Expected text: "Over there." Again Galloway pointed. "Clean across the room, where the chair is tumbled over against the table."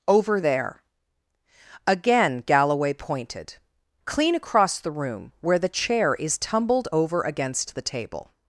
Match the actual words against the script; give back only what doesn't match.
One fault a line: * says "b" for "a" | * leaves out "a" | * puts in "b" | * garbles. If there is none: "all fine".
all fine